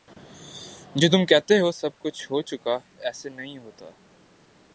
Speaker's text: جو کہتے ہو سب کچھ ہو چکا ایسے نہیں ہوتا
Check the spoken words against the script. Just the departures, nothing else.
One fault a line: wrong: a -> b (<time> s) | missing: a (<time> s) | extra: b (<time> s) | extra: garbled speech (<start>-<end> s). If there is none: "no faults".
extra: تم (1.1 s)